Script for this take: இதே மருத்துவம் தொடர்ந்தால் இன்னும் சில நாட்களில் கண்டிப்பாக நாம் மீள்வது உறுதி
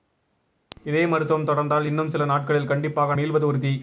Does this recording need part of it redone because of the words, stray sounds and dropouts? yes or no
yes